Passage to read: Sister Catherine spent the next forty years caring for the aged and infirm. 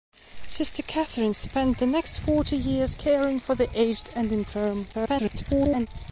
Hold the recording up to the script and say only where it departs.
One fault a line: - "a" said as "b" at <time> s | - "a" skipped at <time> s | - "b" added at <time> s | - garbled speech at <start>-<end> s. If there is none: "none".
- garbled speech at 4.9-5.9 s